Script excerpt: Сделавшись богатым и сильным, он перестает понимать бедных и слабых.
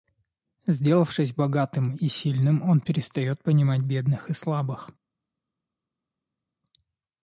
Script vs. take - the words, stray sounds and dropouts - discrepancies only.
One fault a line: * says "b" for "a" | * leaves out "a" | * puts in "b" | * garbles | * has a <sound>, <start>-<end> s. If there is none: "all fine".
all fine